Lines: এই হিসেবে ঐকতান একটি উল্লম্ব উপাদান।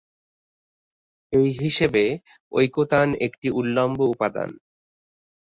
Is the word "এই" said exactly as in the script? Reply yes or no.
yes